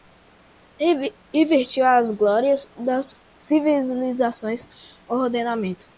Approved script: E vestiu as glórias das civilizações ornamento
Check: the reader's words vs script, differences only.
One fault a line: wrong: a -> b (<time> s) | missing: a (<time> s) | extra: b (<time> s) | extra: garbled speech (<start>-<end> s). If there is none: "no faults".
no faults